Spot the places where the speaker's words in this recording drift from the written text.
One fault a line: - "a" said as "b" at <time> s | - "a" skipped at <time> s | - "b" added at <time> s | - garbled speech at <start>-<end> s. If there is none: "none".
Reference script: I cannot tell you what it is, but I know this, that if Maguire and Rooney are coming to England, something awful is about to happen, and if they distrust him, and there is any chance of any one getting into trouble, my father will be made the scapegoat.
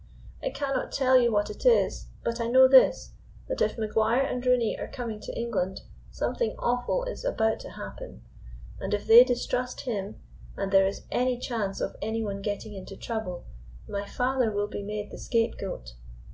none